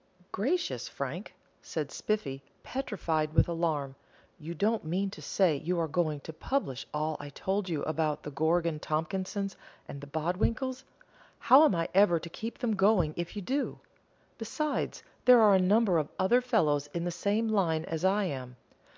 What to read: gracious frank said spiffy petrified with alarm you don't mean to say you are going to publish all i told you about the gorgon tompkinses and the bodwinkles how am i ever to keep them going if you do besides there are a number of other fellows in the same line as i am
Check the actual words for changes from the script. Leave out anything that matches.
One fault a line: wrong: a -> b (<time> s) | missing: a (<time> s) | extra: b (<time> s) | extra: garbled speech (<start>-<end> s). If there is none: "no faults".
no faults